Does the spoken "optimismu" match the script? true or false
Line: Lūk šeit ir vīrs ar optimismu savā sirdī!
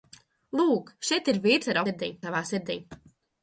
false